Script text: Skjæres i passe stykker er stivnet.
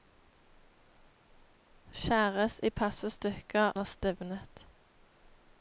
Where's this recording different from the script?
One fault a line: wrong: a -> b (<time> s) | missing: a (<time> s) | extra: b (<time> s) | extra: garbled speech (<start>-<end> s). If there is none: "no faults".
no faults